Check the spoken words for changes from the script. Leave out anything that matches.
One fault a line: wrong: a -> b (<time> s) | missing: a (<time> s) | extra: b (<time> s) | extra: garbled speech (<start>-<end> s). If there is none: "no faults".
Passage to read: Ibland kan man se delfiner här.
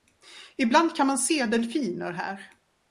no faults